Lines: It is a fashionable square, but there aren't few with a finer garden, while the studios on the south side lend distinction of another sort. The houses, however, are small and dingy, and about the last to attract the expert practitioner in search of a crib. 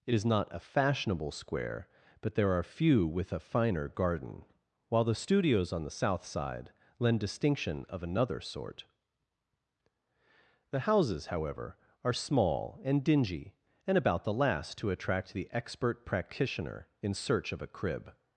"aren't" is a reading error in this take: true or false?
true